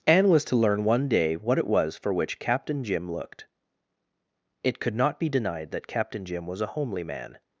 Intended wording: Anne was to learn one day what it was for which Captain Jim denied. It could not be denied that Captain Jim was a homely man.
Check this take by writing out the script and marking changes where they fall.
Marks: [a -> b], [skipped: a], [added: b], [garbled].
Anne was to learn one day what it was for which Captain Jim [denied. -> looked] It could not be denied that Captain Jim was a homely man.